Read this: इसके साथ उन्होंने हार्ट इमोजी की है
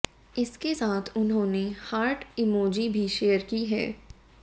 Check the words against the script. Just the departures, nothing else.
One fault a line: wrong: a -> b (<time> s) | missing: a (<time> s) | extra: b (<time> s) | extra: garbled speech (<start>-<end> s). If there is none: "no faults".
extra: भी शेयर (2.9 s)